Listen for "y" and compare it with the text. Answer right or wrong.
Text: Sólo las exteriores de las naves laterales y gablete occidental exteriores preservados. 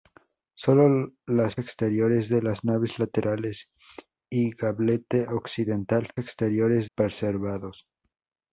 right